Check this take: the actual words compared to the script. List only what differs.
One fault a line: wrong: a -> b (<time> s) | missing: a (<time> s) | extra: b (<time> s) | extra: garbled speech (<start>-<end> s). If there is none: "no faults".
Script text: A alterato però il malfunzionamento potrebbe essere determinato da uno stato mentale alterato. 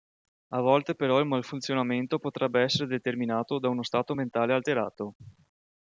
wrong: alterato -> volte (0.6 s)